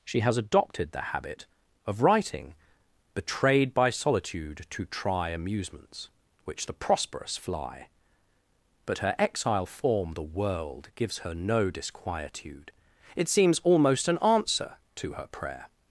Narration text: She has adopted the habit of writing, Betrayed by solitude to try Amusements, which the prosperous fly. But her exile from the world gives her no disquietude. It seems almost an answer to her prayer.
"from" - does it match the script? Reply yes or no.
no